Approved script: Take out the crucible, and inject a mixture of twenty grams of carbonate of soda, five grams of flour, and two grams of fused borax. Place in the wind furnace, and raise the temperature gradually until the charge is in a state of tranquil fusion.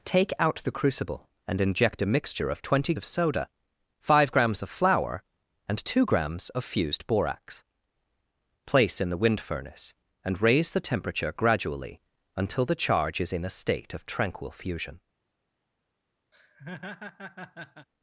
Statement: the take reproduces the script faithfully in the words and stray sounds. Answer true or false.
false